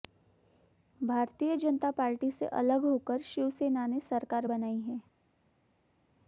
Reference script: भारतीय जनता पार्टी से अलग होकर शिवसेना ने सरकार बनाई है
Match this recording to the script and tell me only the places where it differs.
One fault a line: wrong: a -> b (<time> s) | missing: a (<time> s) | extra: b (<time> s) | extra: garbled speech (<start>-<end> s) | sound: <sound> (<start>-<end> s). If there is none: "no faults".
no faults